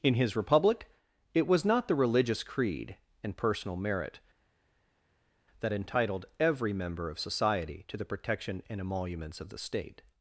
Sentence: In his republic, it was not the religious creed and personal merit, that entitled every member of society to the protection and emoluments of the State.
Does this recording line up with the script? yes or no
yes